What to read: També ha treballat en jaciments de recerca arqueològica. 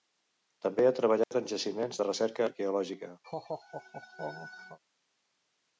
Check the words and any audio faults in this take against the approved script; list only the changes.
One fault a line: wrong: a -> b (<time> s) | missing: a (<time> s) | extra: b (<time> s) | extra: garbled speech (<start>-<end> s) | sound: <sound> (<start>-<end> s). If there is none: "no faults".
sound: dropout (1.2-1.3 s)
sound: laugh (3.2-4.8 s)